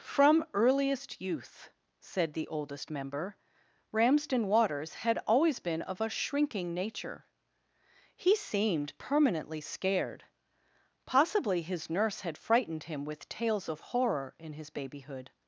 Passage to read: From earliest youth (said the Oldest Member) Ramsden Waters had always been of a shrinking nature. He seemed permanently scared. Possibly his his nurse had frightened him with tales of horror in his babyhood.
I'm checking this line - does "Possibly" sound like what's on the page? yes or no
yes